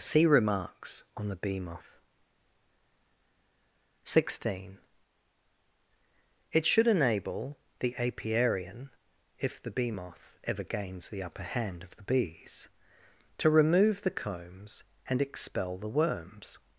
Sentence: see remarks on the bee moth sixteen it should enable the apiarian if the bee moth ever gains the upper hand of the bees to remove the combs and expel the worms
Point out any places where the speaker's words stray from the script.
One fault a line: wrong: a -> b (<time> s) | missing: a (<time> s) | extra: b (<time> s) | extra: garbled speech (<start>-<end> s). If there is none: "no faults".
no faults